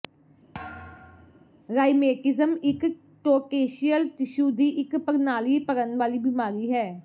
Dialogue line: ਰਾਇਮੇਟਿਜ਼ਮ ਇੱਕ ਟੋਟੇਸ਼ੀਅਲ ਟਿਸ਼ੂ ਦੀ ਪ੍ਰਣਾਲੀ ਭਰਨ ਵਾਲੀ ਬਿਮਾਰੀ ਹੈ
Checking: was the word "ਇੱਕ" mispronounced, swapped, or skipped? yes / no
no